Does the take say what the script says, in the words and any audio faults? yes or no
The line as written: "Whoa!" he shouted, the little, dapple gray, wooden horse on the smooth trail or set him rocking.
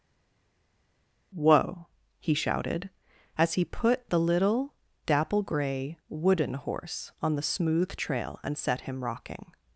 no